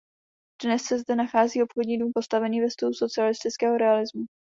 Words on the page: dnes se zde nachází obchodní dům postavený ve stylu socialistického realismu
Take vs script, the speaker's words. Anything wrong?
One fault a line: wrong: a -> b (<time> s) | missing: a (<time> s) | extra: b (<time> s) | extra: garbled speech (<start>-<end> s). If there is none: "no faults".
no faults